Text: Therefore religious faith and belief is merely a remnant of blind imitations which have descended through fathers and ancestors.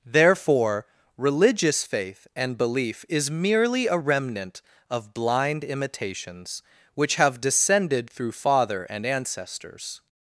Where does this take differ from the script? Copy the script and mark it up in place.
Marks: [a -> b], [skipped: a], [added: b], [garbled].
Therefore religious faith and belief is merely a remnant of blind imitations which have descended through [fathers -> father] and ancestors.